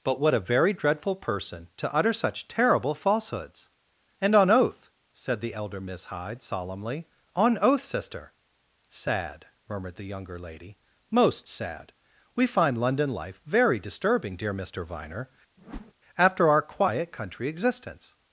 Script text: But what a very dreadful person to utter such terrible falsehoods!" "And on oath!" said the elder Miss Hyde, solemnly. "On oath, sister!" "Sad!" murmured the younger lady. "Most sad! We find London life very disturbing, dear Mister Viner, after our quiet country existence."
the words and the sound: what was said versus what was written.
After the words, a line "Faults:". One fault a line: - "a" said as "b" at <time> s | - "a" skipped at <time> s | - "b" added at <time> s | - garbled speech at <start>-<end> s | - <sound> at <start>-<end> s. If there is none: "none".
But what a very dreadful person to utter such terrible falsehoods!" "And on oath!" said the elder Miss Hyde, solemnly. "On oath, sister!" "Sad!" murmured the younger lady. "Most sad! We find London life very disturbing, dear Mister Viner, after our quiet country existence."
Faults:
- whoosh at 15.6-15.9 s